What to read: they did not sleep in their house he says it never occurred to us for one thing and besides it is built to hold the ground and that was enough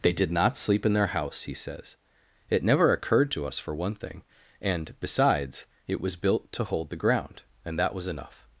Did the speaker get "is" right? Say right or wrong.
wrong